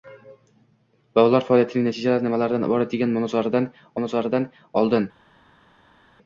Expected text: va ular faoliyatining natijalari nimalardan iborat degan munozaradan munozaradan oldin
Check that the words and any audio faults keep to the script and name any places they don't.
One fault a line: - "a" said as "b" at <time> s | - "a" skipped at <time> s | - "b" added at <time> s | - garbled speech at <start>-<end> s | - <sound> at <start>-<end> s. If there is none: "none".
none